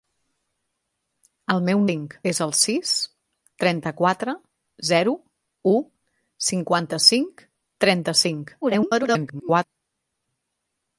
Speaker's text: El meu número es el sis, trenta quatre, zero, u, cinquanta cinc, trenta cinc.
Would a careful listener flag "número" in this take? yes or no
yes